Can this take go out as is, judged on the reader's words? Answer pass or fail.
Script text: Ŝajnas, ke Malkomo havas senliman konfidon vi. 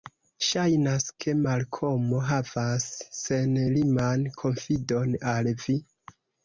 fail